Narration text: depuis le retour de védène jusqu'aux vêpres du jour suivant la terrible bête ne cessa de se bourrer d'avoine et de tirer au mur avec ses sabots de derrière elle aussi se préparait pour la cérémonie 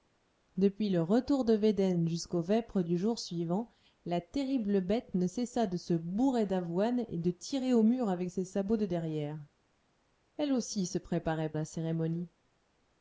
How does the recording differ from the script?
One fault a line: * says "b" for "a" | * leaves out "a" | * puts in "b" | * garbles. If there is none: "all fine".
* leaves out "pour"